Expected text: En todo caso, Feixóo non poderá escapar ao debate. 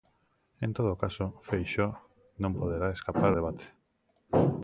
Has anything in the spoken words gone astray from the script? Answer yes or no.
yes